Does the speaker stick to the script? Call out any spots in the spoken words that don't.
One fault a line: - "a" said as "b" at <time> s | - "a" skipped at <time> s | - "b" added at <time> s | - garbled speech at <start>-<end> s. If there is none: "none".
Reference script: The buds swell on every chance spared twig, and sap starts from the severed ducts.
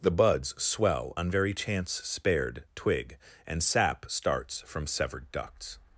- "every" said as "very" at 1.3 s
- "the" skipped at 4.9 s